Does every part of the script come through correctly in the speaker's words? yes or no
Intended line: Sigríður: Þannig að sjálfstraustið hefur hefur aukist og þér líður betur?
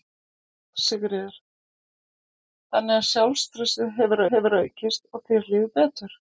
yes